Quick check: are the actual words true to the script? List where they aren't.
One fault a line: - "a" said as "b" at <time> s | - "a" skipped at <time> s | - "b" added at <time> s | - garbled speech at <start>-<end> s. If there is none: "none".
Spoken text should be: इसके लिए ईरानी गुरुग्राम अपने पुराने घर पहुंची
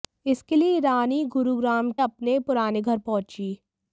none